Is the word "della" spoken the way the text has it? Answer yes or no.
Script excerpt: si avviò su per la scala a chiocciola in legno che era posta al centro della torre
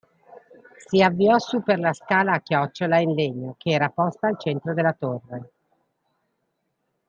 yes